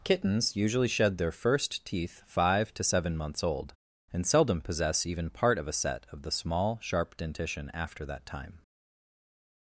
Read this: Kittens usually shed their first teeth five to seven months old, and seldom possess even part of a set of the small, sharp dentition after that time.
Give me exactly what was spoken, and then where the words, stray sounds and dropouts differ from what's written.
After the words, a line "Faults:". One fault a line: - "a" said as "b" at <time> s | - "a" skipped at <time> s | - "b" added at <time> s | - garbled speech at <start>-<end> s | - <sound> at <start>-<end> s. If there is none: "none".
Kittens usually shed their first teeth five to seven months old, and seldom possess even part of a set of the small, sharp dentition after that time.
Faults:
none